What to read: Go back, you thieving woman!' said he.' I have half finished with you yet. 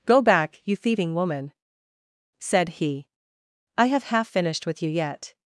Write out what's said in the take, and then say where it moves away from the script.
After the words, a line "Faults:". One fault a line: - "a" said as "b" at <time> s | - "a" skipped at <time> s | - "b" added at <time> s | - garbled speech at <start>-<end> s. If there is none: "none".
Go back, you thieving woman!' said he.' I have half finished with you yet.
Faults:
none